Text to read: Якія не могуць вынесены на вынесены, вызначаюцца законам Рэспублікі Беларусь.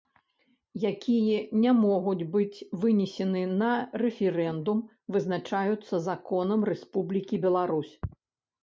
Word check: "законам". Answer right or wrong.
right